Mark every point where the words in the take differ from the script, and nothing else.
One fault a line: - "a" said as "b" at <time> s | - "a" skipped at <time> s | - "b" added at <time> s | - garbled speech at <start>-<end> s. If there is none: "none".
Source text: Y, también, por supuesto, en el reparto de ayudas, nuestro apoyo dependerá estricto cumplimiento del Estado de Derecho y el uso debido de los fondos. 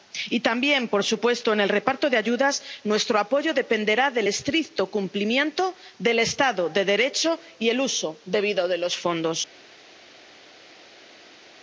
- "del" added at 4.1 s